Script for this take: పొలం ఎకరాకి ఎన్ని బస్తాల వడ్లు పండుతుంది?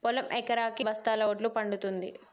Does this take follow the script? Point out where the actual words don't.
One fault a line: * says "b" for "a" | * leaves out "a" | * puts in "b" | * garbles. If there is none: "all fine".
* leaves out "ఎన్ని"